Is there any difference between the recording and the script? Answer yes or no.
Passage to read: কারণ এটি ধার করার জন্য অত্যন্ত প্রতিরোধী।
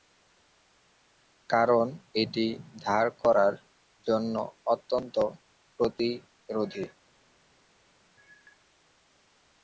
no